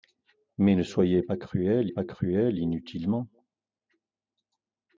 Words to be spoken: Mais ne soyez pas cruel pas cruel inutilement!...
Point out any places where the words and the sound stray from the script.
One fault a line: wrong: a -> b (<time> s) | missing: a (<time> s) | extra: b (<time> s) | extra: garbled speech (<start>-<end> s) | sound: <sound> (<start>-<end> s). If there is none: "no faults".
no faults